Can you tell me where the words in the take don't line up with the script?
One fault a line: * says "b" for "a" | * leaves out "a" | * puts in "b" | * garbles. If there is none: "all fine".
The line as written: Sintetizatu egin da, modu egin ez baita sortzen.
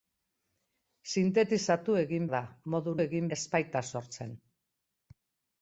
all fine